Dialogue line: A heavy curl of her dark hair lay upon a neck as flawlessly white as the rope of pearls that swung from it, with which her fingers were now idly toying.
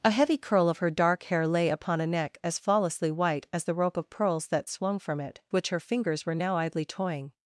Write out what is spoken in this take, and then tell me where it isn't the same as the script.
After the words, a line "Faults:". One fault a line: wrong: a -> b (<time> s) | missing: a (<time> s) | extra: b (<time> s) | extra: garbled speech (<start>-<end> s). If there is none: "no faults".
A heavy curl of her dark hair lay upon a neck as flawlessly white as the rope of pearls that swung from it, which her fingers were now idly toying.
Faults:
missing: with (5.4 s)